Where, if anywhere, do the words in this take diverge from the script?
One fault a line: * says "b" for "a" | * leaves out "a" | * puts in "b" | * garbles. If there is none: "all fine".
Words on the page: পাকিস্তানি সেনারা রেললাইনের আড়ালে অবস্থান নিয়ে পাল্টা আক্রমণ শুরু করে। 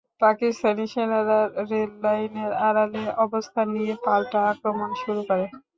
all fine